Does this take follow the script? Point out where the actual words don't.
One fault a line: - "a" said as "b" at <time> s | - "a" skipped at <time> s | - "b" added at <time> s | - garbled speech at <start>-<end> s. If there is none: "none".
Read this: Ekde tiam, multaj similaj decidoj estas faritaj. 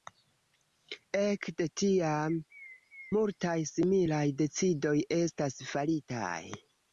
none